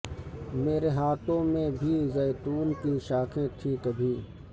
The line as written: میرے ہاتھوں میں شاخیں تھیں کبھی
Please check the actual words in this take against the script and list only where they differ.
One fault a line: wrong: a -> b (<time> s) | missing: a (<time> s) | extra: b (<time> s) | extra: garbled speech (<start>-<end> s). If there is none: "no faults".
extra: بھی زیتون کی (1.7 s)